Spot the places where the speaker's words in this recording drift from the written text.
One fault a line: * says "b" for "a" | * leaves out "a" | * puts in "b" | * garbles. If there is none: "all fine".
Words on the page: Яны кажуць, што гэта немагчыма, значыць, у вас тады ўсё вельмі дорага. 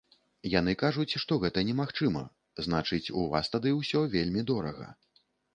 all fine